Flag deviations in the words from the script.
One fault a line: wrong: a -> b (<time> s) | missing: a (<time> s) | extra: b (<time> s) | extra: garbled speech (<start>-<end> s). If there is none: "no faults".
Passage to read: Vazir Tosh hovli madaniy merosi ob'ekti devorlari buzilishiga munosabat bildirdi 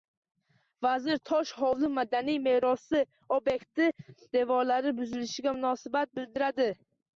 no faults